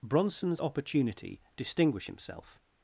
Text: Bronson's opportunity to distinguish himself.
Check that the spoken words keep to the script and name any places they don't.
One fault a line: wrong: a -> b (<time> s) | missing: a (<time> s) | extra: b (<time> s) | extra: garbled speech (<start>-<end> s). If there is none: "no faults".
missing: to (1.4 s)